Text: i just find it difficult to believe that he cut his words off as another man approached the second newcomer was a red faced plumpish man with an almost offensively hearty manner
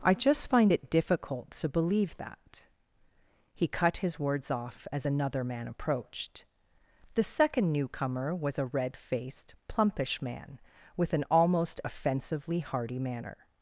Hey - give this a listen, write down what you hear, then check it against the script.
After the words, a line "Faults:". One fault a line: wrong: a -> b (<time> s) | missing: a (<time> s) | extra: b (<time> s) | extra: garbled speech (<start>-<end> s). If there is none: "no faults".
i just find it difficult to believe that he cut his words off as another man approached the second newcomer was a red faced plumpish man with an almost offensively hearty manner
Faults:
no faults